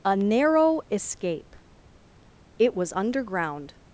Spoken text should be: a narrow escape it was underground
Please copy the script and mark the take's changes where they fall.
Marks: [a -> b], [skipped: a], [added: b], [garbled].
a narrow escape it was underground